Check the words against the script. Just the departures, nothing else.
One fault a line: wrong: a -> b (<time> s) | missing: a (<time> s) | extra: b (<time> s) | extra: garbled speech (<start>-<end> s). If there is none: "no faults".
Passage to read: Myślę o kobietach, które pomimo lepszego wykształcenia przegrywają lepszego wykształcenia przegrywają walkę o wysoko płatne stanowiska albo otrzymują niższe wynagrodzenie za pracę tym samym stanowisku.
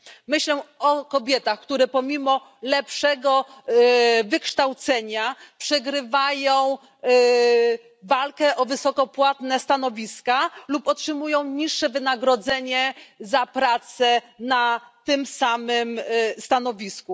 missing: lepszego wykształcenia przegrywają (6.8 s)
wrong: albo -> lub (10.7 s)
extra: na (14.4 s)